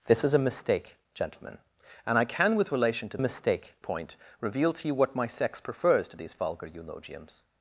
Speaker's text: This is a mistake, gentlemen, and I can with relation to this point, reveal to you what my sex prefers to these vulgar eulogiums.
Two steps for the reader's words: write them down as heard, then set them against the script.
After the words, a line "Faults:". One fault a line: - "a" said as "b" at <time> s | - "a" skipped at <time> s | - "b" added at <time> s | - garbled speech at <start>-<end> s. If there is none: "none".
This is a mistake, gentlemen, and I can with relation to mistake point, reveal to you what my sex prefers to these vulgar eulogiums.
Faults:
- "this" said as "mistake" at 3.2 s